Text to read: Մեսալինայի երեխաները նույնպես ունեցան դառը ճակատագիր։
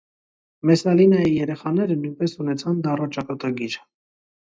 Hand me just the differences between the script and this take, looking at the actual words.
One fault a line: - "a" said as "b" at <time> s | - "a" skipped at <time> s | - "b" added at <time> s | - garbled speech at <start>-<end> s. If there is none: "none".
none